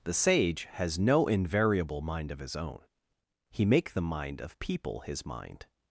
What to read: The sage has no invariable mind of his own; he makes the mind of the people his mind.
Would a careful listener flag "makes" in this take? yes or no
yes